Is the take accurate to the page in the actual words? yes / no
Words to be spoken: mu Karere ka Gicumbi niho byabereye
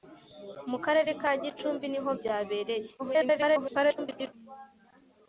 no